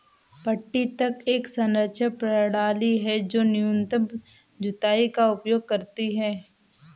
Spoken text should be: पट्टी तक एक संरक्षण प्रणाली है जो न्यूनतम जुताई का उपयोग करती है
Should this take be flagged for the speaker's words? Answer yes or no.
no